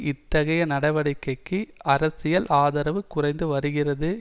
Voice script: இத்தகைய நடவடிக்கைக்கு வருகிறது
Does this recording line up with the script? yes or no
no